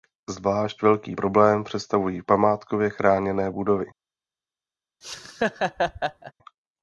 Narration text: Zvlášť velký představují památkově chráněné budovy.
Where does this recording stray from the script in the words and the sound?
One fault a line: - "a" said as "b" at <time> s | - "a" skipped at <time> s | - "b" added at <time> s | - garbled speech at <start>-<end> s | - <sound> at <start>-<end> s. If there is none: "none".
- "problém" added at 1.1 s
- laugh at 5.0-6.3 s